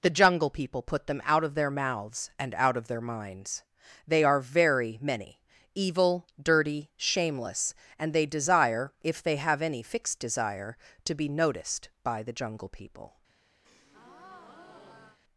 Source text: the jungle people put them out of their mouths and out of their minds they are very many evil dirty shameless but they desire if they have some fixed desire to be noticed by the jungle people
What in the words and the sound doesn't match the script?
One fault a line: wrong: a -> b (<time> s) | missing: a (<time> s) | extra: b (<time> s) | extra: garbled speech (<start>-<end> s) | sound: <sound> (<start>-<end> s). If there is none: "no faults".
wrong: but -> and (8.0 s)
wrong: some -> any (9.6 s)
sound: breath (13.6-15.2 s)